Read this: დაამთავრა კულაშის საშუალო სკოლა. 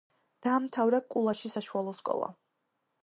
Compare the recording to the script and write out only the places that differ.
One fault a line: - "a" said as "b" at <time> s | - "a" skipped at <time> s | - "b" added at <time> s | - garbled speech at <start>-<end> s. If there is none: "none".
none